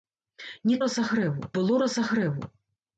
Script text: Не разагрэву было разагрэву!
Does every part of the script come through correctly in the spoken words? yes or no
yes